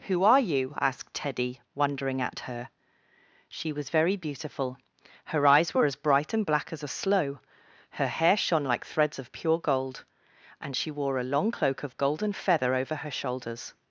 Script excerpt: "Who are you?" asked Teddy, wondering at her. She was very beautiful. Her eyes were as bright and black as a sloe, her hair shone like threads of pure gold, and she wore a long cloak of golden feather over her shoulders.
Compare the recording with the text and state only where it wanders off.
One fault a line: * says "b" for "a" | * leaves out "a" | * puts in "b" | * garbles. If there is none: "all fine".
all fine